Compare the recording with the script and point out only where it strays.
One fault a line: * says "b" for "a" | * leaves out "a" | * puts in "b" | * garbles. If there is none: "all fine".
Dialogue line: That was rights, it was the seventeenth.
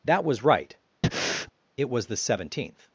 * says "right" for "rights"